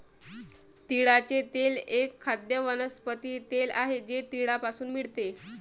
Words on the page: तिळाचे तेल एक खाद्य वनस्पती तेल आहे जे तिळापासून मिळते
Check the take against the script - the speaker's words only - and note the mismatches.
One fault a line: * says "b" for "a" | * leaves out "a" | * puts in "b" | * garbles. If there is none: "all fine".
all fine